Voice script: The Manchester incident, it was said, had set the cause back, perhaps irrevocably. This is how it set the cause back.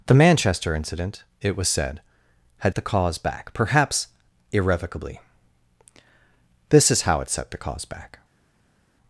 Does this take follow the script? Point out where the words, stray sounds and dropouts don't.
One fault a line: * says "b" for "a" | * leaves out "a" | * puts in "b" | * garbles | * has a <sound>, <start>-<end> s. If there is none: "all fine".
* leaves out "set"